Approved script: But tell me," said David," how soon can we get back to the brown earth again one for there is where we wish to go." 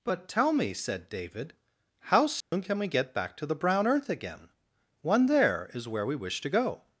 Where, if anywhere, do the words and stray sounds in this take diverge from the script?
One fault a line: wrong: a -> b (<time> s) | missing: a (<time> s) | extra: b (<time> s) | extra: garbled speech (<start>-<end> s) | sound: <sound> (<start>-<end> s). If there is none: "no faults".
sound: dropout (2.4-2.5 s)
missing: for (5.3 s)